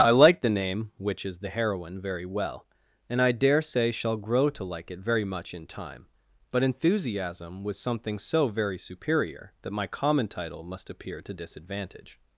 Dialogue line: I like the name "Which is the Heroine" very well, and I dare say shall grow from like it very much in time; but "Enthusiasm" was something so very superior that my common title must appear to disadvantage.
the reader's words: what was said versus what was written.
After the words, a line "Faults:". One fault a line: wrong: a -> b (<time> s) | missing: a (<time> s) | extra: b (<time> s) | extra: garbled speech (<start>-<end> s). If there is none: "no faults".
I like the name "Which is the Heroine" very well, and I dare say shall grow to like it very much in time; but "Enthusiasm" was something so very superior that my common title must appear to disadvantage.
Faults:
wrong: from -> to (4.5 s)